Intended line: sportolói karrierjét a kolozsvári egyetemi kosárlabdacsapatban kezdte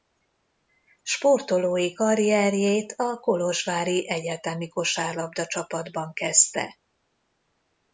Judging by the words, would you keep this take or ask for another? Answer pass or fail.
pass